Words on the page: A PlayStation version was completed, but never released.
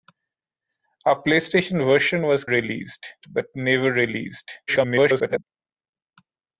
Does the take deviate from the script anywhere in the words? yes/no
yes